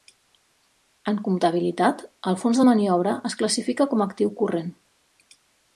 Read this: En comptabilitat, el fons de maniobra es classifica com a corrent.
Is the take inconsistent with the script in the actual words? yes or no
yes